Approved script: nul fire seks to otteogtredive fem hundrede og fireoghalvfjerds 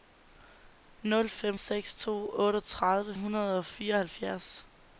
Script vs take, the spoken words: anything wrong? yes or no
yes